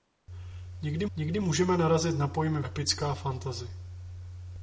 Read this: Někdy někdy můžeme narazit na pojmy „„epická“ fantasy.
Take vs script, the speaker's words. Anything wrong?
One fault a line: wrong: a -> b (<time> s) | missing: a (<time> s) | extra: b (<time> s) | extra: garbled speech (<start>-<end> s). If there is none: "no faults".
no faults